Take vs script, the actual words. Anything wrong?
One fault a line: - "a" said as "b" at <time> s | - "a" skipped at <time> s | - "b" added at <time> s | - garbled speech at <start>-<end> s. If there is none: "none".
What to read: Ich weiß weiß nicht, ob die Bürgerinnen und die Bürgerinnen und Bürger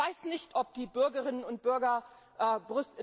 - "weiß" skipped at 0.2 s
- "die Bürgerinnen und" skipped at 1.6 s